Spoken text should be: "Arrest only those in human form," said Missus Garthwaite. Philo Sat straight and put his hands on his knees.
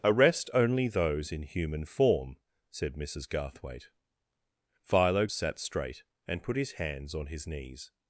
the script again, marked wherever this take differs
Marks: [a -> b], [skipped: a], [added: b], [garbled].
"Arrest only those in human form," said Missus Garthwaite. Philo Sat straight and put his hands on his knees.